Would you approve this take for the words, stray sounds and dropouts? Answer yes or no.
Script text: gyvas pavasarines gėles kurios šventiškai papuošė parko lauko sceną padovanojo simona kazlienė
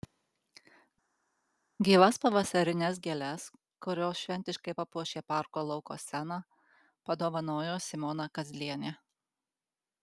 yes